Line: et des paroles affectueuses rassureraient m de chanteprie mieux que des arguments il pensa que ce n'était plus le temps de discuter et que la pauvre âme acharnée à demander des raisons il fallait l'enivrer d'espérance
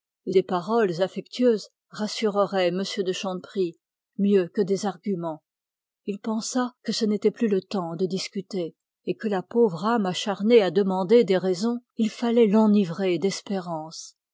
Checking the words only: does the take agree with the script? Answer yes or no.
yes